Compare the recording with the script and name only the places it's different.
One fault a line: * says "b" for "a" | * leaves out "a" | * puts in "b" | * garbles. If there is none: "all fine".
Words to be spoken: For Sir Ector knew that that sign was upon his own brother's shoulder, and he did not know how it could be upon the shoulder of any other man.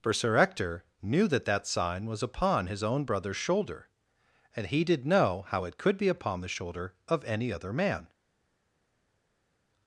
* leaves out "not"